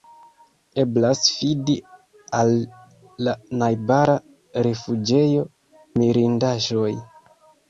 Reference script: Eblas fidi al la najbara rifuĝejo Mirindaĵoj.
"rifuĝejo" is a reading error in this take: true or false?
false